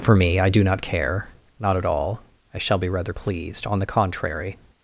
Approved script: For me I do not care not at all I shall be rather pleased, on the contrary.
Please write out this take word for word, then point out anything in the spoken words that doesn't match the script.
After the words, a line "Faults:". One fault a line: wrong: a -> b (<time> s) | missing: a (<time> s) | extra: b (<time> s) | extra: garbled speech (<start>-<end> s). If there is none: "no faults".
For me I do not care not at all I shall be rather pleased, on the contrary.
Faults:
no faults